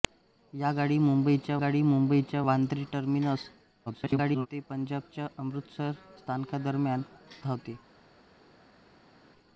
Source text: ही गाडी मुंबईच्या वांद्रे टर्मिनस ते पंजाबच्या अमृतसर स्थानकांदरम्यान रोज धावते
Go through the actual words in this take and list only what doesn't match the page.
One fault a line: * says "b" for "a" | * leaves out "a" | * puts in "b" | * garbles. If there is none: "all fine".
* puts in "गाडी मुंबईच्या"
* garbles
* leaves out "रोज"